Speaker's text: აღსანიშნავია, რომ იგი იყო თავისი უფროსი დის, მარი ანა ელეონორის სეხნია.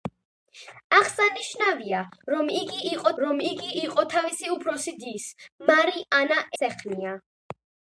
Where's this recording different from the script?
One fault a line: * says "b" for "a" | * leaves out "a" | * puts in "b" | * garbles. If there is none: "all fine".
* puts in "რომ იგი იყო"
* leaves out "ელეონორის"